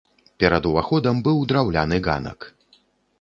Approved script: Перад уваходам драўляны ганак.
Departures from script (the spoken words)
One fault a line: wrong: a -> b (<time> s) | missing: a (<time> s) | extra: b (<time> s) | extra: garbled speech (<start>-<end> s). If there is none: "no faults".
extra: быў (1.3 s)